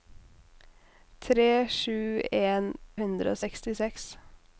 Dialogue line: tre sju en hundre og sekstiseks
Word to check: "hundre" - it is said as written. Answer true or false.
true